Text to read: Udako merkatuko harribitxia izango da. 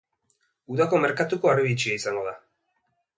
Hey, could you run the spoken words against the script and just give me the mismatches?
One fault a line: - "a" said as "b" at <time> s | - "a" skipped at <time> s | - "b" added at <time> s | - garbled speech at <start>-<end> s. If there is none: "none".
none